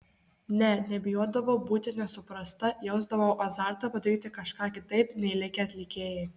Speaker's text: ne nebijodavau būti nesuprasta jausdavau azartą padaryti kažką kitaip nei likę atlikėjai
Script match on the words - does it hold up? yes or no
yes